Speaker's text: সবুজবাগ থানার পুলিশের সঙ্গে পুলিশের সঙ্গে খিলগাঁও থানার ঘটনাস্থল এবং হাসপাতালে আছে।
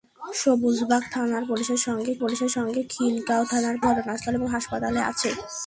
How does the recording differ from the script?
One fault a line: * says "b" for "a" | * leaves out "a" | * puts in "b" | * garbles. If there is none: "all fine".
all fine